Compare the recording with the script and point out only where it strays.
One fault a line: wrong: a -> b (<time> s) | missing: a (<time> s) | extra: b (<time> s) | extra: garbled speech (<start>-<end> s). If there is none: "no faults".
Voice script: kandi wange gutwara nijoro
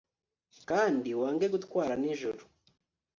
no faults